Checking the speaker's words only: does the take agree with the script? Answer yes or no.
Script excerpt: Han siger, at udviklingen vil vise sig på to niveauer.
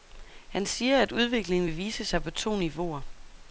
yes